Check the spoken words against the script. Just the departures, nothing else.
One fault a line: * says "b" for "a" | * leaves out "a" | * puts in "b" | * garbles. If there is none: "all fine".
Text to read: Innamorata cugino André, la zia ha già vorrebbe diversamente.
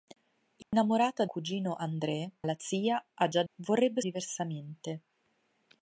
all fine